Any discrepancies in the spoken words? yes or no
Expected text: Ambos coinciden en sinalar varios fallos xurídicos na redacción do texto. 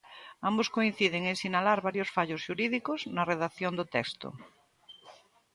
no